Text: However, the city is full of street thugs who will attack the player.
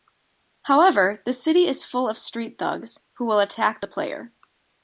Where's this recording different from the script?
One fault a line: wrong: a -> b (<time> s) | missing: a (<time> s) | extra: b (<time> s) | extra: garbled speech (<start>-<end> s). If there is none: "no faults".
no faults